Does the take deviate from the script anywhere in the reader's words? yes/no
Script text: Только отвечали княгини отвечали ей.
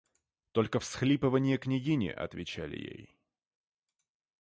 yes